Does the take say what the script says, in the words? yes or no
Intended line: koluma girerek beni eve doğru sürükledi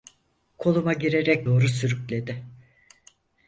no